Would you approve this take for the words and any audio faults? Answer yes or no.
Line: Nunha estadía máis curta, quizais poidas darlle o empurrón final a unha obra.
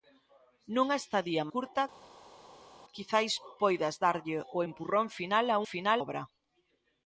no